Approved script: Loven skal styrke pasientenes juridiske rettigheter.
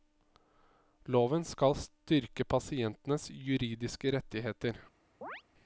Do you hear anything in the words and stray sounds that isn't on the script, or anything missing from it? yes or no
yes